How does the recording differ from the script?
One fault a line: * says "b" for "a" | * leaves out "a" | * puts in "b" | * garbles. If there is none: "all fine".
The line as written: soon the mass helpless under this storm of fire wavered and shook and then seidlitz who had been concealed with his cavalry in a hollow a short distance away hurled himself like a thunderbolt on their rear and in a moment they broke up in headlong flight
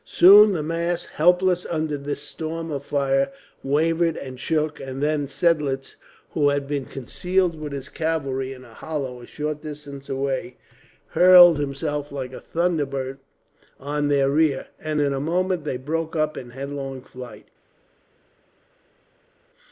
all fine